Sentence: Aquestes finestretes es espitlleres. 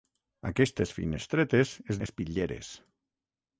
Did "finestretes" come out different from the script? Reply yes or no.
no